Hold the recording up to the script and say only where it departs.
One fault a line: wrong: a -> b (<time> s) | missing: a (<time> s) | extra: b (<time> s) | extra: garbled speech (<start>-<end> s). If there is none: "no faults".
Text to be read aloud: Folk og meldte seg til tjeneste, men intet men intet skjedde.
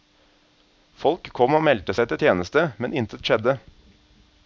extra: kom (1.4 s)
missing: men intet (3.2 s)